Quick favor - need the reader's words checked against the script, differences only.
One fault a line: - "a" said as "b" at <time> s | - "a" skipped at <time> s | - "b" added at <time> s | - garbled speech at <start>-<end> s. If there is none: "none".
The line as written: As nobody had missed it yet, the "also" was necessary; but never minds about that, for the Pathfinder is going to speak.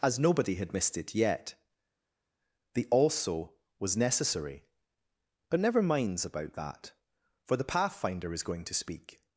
none